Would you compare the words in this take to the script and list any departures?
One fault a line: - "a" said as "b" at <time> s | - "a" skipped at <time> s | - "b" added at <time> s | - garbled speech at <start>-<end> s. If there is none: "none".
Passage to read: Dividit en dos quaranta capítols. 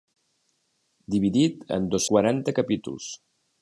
none